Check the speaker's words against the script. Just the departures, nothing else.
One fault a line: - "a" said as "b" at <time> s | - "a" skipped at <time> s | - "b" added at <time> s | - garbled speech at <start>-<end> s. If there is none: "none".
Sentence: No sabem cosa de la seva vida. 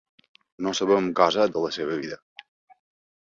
none